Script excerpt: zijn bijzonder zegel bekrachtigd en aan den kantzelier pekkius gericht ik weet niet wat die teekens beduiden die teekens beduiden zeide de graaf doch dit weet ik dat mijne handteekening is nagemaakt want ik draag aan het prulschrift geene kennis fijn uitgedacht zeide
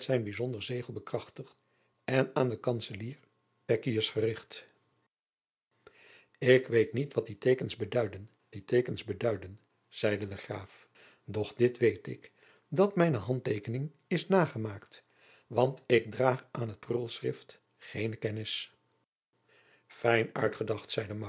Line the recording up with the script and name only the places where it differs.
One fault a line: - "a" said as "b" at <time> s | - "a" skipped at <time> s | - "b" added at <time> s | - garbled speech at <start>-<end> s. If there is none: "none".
none